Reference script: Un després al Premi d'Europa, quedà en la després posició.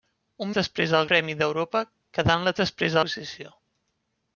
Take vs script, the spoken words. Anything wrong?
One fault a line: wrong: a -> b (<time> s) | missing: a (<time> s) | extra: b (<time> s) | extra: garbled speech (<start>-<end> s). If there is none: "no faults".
no faults